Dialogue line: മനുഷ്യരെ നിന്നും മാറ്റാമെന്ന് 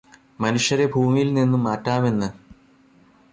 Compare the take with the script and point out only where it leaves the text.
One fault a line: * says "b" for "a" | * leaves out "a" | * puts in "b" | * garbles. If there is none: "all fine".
* puts in "ഭൂമിയില്"